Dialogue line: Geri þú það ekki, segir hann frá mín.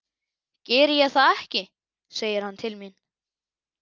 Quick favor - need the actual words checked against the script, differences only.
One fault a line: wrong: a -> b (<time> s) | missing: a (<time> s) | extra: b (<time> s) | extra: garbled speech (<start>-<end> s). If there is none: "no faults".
wrong: þú -> ég (1.0 s)
wrong: frá -> til (2.6 s)